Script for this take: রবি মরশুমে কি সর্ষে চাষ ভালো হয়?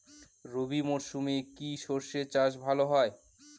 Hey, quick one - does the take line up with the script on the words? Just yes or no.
yes